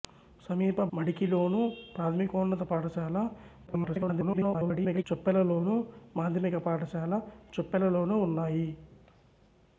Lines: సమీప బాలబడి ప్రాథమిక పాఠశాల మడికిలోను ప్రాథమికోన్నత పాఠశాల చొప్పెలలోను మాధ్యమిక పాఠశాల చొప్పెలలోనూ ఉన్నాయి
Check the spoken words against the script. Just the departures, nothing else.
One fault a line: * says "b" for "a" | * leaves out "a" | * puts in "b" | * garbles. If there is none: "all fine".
* leaves out "బాలబడి ప్రాథమిక పాఠశాల"
* garbles